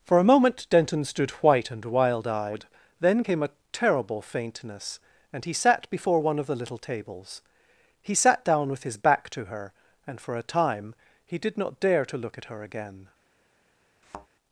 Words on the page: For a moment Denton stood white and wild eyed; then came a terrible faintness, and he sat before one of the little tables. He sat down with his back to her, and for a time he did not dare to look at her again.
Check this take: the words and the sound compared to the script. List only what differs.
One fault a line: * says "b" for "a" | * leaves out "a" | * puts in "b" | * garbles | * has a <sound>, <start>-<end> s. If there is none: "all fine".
* has a thud, 14.0-14.3 s